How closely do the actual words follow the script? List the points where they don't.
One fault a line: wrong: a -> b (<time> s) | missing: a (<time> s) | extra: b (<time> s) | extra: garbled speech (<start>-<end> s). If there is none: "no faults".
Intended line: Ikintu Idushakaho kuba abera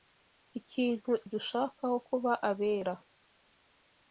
no faults